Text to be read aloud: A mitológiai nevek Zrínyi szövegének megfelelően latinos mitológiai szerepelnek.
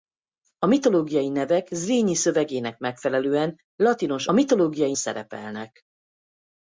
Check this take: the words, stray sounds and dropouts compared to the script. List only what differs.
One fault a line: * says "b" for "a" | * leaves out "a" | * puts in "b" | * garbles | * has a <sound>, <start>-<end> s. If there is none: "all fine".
all fine